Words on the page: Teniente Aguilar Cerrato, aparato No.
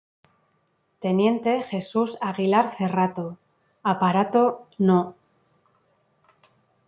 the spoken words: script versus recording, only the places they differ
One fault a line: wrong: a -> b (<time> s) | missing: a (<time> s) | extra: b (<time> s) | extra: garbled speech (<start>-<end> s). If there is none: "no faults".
extra: Jesús (1.6 s)